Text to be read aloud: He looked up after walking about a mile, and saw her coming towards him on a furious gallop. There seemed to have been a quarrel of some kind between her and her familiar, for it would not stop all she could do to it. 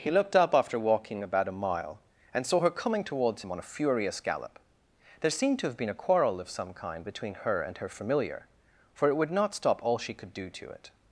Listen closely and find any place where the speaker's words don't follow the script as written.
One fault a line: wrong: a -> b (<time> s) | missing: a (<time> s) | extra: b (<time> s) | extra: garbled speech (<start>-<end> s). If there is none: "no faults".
no faults